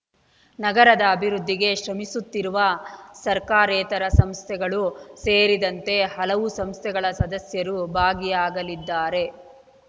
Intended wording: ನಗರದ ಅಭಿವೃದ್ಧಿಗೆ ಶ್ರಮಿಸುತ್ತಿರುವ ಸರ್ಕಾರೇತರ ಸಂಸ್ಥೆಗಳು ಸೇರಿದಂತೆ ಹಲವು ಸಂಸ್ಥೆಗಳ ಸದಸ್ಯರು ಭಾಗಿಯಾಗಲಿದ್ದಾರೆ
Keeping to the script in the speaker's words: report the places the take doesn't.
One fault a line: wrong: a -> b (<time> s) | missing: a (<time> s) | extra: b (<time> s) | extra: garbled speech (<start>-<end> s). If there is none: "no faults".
no faults